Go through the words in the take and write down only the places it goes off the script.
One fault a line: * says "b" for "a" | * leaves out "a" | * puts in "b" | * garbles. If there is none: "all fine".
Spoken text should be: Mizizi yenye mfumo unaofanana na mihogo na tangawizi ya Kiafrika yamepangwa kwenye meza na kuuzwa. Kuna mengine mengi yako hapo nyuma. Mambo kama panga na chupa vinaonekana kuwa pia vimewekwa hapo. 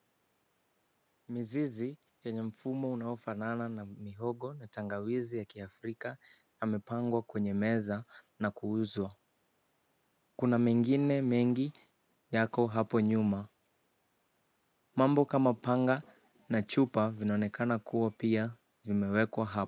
all fine